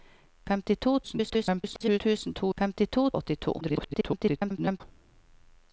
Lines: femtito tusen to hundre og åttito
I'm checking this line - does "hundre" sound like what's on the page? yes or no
no